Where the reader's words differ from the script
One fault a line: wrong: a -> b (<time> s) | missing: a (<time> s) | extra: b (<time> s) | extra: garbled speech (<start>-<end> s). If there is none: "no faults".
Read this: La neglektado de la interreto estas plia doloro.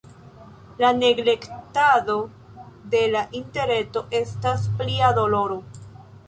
no faults